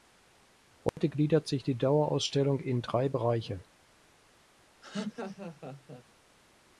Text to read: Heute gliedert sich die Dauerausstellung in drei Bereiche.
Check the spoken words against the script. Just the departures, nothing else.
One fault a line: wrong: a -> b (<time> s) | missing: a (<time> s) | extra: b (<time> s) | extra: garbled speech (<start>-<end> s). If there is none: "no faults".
no faults